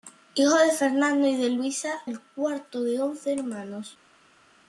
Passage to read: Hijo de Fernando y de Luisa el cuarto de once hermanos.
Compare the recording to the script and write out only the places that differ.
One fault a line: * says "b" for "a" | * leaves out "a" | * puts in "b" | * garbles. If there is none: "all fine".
all fine